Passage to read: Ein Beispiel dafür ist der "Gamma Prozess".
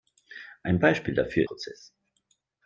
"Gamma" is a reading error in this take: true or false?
true